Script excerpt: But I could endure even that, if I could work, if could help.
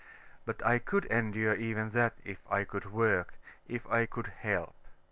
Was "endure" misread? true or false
false